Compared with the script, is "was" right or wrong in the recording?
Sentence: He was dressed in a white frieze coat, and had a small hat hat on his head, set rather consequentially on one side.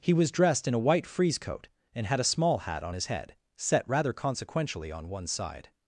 right